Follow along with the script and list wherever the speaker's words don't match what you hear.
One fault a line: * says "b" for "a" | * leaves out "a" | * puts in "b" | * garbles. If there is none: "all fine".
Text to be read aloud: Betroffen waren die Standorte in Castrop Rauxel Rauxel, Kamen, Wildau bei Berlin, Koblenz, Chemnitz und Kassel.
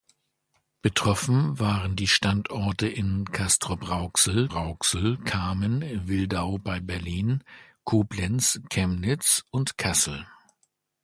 all fine